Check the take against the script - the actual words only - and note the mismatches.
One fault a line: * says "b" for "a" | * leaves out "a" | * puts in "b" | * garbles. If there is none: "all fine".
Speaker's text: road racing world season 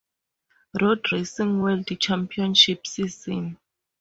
* puts in "championship"